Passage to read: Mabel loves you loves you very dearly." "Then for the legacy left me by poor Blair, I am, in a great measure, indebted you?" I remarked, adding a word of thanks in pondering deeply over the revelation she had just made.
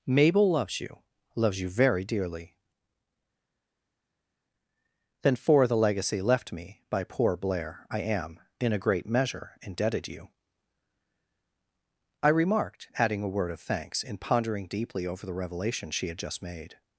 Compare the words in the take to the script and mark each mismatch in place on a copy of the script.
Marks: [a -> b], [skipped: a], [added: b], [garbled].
Mabel loves you loves you very dearly." "Then for the legacy left me by poor Blair, I am, in a great measure, indebted you?" I remarked, adding a word of thanks in pondering deeply over the revelation she had just made.